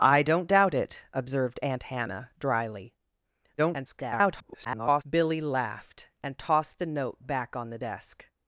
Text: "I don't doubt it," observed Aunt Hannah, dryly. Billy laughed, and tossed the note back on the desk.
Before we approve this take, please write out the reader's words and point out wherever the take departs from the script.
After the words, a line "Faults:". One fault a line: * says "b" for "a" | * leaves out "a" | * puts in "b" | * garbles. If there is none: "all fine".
"I don't doubt it," observed Aunt Hannah, dryly. [garbled] Billy laughed, and tossed the note back on the desk.
Faults:
* garbles